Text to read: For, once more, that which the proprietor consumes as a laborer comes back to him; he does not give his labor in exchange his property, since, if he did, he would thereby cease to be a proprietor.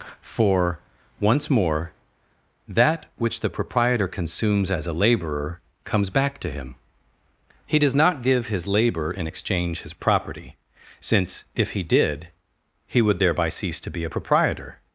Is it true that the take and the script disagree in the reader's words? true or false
false